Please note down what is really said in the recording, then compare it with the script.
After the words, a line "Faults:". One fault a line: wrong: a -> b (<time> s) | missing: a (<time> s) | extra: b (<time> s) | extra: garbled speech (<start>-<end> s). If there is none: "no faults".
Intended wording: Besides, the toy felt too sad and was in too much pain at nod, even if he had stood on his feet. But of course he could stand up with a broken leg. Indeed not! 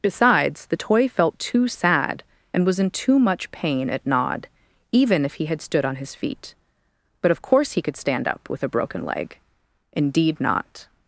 Besides, the toy felt too sad and was in too much pain at nod, even if he had stood on his feet. But of course he could stand up with a broken leg. Indeed not!
Faults:
no faults